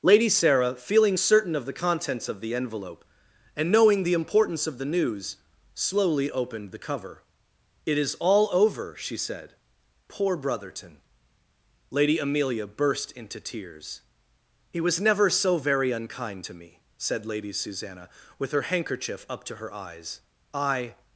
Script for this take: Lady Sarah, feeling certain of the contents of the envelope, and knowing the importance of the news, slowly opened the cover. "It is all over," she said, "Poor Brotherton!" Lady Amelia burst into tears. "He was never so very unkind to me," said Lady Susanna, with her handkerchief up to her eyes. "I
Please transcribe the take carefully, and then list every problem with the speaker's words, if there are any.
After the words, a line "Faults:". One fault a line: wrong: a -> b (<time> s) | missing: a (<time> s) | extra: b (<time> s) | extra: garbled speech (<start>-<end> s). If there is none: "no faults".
Lady Sarah, feeling certain of the contents of the envelope, and knowing the importance of the news, slowly opened the cover. "It is all over," she said, "Poor Brotherton!" Lady Amelia burst into tears. "He was never so very unkind to me," said Lady Susanna, with her handkerchief up to her eyes. "I
Faults:
no faults